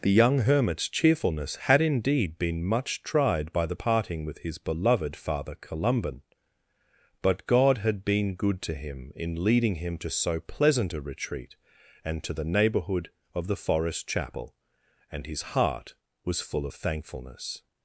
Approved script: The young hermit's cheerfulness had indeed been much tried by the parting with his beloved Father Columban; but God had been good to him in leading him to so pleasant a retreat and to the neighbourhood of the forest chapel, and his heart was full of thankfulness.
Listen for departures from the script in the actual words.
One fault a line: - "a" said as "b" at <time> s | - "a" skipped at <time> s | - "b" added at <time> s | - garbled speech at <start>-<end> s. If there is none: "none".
none